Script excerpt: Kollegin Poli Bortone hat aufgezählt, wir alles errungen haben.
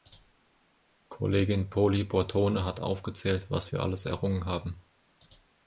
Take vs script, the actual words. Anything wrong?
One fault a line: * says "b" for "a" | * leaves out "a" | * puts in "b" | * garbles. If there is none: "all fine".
* puts in "was"